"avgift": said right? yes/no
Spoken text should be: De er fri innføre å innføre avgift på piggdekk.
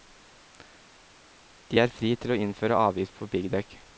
yes